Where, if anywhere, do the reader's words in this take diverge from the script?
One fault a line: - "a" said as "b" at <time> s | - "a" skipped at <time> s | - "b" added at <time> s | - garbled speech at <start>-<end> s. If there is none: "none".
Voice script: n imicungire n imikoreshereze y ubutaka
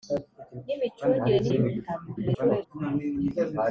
- "imikoreshereze" skipped at 1.4 s
- garbled speech at 2.1-2.7 s